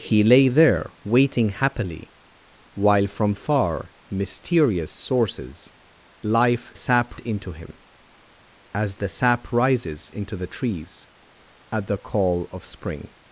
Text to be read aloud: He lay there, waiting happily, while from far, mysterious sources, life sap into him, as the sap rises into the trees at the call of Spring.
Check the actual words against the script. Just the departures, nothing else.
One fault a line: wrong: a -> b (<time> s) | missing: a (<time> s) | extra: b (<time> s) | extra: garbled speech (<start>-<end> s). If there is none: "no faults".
no faults